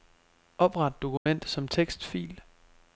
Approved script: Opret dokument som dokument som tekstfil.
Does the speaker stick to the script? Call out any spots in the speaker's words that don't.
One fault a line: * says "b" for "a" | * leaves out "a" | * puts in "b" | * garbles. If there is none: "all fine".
* leaves out "dokument som"